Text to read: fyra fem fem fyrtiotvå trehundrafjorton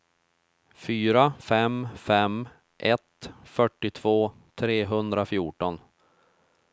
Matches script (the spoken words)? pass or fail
fail